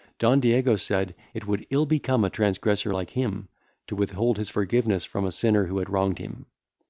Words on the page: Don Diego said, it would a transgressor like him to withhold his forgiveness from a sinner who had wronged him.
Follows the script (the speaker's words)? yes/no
no